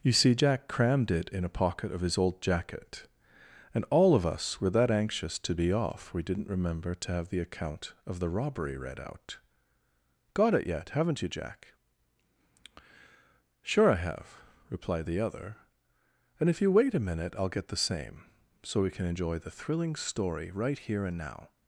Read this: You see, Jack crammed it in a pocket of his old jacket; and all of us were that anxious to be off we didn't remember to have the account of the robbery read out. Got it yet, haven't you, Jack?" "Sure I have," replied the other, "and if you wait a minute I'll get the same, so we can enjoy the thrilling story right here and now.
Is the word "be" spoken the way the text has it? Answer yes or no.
yes